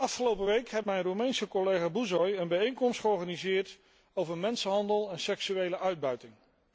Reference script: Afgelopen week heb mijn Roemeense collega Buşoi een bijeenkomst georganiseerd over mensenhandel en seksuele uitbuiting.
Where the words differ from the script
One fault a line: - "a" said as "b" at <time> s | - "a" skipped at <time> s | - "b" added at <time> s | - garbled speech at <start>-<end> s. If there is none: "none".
none